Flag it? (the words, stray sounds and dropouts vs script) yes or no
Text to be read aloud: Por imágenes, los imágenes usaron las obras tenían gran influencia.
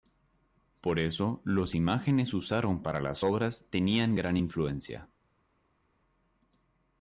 yes